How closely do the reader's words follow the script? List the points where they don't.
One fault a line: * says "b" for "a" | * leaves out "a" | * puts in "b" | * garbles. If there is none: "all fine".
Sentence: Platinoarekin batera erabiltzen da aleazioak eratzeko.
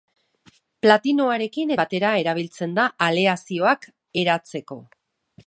all fine